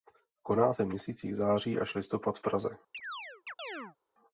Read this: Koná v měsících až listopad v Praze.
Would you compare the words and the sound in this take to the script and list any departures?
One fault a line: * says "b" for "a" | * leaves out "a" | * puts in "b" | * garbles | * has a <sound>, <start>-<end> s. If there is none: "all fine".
* puts in "se"
* puts in "září"
* has a chirp, 2.9-4.0 s